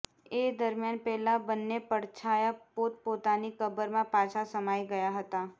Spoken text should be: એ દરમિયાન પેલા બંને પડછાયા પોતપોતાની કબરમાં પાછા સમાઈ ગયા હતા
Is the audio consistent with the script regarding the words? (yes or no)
yes